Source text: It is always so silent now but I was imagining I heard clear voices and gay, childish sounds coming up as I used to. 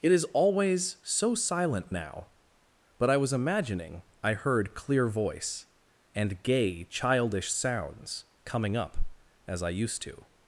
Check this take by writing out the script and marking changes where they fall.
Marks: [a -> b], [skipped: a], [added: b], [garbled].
It is always so silent now but I was imagining I heard clear [voices -> voice] and gay, childish sounds coming up as I used to.